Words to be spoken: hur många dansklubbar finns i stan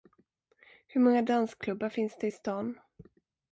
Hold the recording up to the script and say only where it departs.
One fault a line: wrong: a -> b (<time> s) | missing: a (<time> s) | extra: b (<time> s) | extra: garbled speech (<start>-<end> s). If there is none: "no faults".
extra: det (2.2 s)